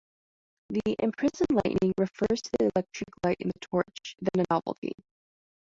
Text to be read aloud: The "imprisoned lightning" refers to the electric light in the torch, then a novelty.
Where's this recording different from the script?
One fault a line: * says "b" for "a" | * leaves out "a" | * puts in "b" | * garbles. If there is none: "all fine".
all fine